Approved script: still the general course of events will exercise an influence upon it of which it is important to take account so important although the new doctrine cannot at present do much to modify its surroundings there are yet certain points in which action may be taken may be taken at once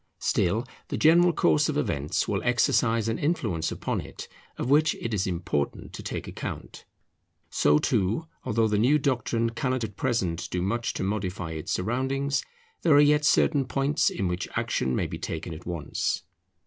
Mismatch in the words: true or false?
true